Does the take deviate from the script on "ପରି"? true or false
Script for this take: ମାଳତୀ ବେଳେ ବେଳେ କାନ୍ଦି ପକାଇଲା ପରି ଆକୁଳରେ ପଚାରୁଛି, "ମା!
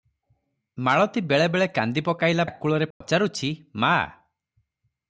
true